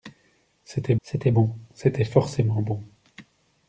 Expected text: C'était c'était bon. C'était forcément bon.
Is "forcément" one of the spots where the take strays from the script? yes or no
no